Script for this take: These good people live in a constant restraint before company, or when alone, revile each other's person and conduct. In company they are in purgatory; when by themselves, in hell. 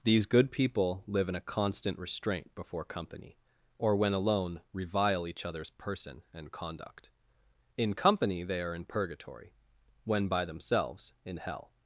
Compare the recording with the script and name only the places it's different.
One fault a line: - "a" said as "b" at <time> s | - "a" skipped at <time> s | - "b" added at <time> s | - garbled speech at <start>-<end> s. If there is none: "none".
none